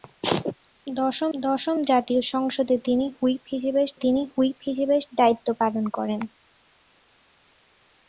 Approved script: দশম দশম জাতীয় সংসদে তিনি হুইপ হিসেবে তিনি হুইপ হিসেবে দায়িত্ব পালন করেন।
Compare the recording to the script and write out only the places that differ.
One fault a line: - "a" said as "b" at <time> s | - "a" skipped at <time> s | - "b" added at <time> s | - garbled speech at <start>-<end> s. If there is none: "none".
none